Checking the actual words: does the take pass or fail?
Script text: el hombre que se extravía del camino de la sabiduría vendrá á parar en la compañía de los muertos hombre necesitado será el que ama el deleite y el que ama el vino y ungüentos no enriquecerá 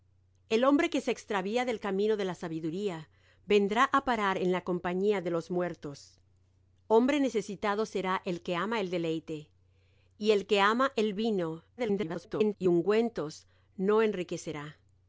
fail